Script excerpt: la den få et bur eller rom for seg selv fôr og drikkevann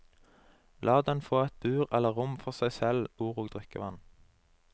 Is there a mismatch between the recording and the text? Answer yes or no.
no